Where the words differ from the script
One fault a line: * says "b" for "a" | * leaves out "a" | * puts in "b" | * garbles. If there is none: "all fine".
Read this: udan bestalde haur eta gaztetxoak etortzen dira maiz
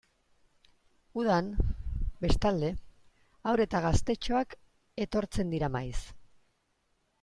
all fine